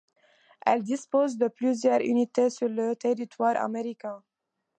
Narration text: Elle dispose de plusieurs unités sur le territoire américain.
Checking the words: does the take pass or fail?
pass